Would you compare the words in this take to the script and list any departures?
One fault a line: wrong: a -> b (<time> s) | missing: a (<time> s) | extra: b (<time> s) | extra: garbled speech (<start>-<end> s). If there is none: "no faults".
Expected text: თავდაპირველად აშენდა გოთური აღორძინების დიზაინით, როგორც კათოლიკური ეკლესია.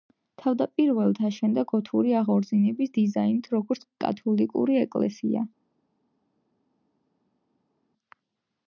no faults